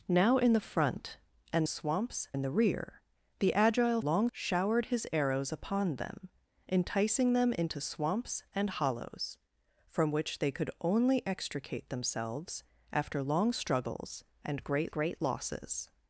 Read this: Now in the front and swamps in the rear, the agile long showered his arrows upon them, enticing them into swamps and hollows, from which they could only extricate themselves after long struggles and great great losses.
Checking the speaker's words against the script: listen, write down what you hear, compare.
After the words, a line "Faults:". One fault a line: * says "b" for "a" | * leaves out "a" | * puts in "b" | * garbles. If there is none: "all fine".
Now in the front and swamps in the rear, the agile long showered his arrows upon them, enticing them into swamps and hollows, from which they could only extricate themselves after long struggles and great great losses.
Faults:
all fine